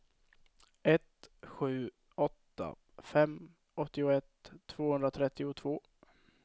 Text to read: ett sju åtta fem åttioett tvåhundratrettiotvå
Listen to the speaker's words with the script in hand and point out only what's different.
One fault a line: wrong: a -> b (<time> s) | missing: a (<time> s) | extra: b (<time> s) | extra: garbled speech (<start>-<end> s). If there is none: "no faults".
no faults